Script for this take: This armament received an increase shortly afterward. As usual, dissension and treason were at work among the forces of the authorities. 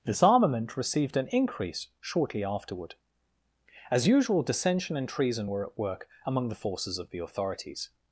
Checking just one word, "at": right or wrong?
right